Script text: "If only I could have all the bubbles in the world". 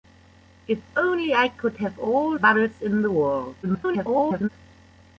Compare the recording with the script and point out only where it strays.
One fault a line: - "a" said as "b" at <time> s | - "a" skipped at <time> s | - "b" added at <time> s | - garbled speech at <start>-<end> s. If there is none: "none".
- "the" skipped at 2.4 s
- garbled speech at 3.6-4.5 s